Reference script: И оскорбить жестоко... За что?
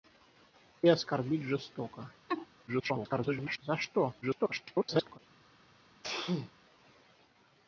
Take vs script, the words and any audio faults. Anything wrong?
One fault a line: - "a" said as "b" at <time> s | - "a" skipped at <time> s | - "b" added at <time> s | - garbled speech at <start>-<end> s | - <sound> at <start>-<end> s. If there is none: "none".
- laugh at 2.3-2.5 s
- garbled speech at 2.7-3.6 s
- garbled speech at 4.2-5.2 s
- sneeze at 6.0-6.5 s